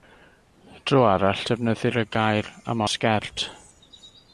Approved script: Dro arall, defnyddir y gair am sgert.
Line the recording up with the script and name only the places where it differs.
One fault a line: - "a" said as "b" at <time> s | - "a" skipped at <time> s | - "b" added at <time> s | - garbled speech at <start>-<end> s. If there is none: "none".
none